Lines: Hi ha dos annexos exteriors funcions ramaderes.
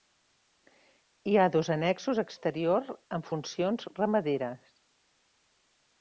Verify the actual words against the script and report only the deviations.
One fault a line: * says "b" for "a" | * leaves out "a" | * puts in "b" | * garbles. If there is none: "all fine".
* puts in "amb"